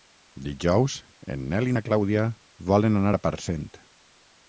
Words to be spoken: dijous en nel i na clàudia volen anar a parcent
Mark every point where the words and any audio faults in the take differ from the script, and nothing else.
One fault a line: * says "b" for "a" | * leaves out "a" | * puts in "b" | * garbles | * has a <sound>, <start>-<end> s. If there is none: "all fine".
all fine